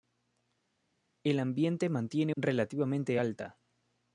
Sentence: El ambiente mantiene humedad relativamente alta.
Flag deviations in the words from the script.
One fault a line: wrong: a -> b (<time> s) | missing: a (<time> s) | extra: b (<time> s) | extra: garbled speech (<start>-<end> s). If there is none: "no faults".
missing: humedad (2.3 s)